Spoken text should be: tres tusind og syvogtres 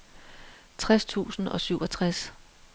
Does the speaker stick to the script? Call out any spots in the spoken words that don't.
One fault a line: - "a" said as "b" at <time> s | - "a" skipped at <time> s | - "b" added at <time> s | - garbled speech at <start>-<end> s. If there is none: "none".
none